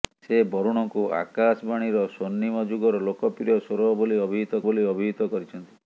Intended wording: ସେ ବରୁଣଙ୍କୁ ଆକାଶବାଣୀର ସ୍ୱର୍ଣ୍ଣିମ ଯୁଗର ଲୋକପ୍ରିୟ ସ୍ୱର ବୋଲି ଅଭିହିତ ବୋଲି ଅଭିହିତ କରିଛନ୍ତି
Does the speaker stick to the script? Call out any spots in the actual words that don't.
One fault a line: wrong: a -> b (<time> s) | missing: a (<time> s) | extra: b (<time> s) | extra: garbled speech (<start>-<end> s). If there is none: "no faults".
no faults